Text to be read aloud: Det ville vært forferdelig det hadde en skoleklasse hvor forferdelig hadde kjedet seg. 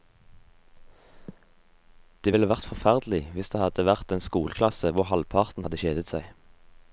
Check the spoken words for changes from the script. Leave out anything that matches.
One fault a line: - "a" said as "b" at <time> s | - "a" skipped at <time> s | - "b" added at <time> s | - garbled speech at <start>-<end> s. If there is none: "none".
- "hvis" added at 3.3 s
- "vært" added at 3.9 s
- "forferdelig" said as "halvparten" at 5.1 s